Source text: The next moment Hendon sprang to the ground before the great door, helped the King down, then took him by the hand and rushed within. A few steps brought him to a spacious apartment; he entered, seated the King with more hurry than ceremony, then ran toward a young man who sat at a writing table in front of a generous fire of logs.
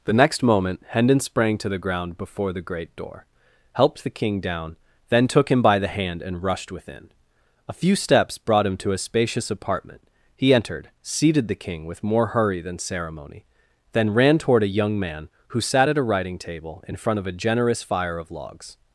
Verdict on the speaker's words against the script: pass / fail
pass